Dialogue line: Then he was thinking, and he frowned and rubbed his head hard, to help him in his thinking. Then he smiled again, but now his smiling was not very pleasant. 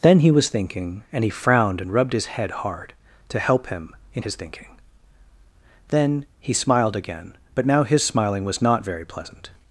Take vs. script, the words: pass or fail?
pass